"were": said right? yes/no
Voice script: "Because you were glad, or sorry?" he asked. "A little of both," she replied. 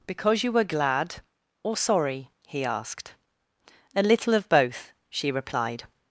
yes